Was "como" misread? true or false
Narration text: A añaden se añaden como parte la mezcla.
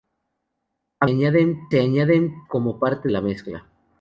false